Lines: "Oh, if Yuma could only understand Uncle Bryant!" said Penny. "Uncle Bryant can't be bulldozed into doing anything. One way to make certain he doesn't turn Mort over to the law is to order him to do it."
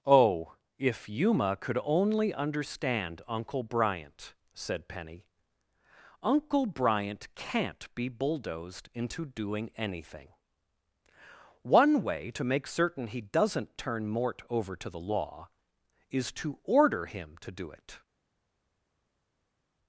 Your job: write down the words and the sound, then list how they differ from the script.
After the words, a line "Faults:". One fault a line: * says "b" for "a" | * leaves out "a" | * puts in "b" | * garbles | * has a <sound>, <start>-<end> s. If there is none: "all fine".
"Oh, if Yuma could only understand Uncle Bryant!" said Penny. "Uncle Bryant can't be bulldozed into doing anything. One way to make certain he doesn't turn Mort over to the law is to order him to do it."
Faults:
all fine